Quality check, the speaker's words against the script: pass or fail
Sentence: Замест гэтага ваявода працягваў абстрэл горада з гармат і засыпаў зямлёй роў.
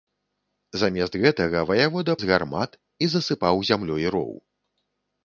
fail